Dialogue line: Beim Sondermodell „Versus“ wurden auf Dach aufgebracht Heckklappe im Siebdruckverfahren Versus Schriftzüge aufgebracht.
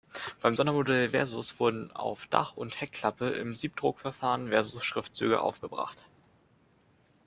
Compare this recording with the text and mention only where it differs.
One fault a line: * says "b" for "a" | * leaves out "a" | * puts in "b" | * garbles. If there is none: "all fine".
* says "und" for "aufgebracht"